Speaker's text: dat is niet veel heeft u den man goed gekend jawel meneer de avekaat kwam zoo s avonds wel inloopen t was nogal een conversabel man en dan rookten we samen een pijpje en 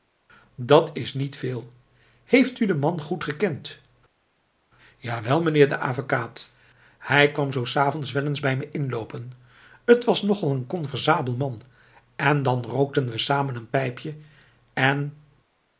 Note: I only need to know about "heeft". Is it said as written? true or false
true